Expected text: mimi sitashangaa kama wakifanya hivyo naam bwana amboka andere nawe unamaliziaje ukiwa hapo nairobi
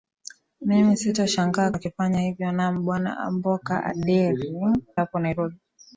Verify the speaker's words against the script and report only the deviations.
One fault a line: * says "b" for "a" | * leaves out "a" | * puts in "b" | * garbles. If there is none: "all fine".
* leaves out "kama"
* leaves out "nawe unamaliziaje ukiwa"